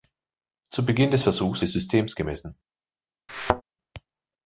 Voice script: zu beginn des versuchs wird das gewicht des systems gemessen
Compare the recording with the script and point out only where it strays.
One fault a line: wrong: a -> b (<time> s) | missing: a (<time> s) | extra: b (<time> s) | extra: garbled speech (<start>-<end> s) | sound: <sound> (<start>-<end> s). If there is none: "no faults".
missing: wird das gewicht (1.6 s)
sound: thud (3.3-3.6 s)